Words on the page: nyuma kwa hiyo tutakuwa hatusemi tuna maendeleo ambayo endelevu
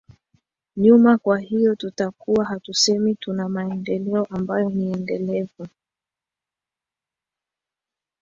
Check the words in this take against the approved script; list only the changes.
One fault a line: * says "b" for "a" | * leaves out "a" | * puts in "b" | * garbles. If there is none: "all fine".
* puts in "ni"